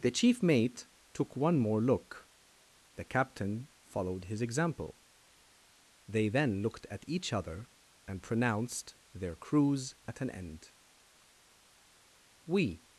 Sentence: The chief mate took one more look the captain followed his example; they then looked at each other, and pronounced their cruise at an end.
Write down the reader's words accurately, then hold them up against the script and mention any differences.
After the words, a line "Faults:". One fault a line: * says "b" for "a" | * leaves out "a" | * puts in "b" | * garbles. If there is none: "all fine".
The chief mate took one more look the captain followed his example; they then looked at each other, and pronounced their cruise at an end. "We
Faults:
* puts in "We"